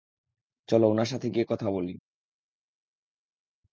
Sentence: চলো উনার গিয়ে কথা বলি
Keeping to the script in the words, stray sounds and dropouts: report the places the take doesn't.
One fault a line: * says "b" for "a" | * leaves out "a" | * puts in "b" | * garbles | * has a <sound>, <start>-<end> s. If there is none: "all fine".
* puts in "সাথে"